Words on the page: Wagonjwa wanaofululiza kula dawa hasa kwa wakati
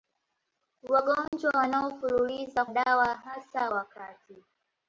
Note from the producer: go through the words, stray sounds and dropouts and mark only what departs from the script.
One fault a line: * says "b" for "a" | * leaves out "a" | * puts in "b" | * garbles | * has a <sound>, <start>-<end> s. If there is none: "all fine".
* has a dropout, 1.3-1.3 s
* leaves out "kula"
* leaves out "kwa"